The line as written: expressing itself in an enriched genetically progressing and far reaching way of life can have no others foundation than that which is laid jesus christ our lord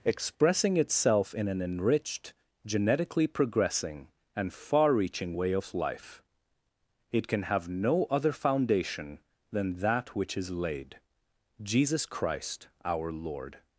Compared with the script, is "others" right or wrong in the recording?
wrong